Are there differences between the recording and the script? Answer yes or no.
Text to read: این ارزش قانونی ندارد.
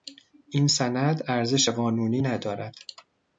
yes